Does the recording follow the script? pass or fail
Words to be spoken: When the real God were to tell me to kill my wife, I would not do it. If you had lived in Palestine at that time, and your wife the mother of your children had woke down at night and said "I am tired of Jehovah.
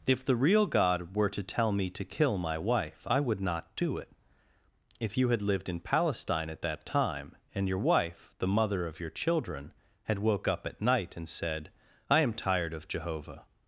fail